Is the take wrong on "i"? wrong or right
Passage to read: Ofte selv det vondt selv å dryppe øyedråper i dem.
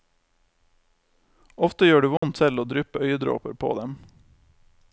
wrong